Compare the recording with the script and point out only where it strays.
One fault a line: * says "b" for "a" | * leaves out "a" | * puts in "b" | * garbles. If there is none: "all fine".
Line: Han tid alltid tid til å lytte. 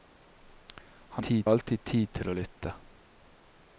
all fine